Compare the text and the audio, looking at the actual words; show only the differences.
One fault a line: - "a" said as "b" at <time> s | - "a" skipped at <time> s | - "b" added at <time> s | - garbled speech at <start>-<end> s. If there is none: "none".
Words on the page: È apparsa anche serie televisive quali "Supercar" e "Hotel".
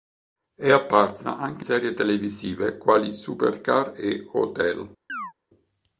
none